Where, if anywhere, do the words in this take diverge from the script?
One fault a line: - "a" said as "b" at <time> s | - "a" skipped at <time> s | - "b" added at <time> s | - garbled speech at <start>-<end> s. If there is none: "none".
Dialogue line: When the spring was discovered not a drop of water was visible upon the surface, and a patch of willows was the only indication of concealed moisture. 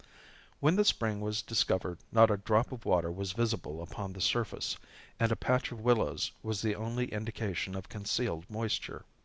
none